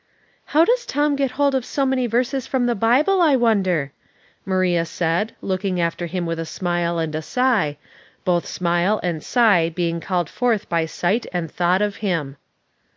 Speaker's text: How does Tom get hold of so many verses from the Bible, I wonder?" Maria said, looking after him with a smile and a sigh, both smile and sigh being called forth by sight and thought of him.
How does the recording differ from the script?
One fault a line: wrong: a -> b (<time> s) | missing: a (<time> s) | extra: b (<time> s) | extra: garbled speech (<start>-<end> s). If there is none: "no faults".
no faults